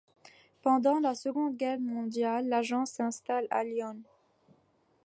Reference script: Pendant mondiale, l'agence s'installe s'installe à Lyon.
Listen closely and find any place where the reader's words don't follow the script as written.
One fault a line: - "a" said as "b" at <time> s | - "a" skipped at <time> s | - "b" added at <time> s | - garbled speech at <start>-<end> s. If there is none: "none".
- "la Seconde Guerre" added at 1.0 s
- "s'installe" skipped at 3.5 s